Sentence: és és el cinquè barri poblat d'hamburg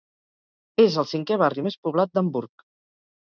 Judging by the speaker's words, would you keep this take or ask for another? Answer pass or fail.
fail